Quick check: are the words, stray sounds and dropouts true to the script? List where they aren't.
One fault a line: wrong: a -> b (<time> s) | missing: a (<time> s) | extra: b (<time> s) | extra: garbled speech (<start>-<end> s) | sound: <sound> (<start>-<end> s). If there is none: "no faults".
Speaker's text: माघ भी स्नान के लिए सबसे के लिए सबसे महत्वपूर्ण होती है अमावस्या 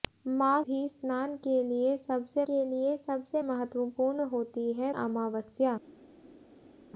no faults